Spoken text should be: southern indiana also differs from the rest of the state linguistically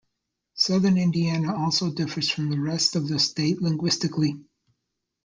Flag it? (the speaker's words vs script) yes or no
no